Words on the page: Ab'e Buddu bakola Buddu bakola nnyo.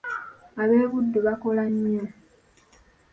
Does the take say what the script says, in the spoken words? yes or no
no